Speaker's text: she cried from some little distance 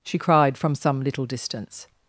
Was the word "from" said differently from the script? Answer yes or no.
no